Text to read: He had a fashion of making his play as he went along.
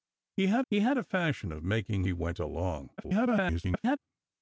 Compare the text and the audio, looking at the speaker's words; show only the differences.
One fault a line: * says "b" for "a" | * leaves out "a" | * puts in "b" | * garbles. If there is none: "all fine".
* puts in "he had"
* leaves out "his play as"
* garbles